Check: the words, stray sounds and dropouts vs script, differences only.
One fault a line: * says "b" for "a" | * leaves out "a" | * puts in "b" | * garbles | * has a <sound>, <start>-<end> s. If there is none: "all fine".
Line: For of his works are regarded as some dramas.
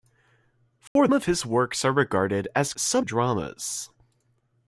* has a dropout, 0.9-1.0 s